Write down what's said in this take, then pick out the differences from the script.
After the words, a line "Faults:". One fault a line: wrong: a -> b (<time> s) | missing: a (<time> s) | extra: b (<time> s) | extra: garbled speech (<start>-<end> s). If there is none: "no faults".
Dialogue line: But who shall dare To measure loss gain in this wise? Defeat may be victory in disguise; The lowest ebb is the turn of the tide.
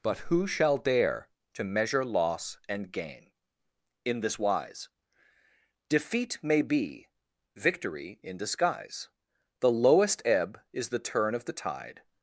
But who shall dare To measure loss and gain in this wise? Defeat may be victory in disguise; The lowest ebb is the turn of the tide.
Faults:
extra: and (2.7 s)